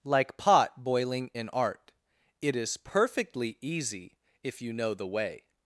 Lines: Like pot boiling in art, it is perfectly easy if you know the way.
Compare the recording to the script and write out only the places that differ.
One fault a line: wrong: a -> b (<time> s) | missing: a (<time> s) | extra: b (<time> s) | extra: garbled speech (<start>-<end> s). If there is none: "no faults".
no faults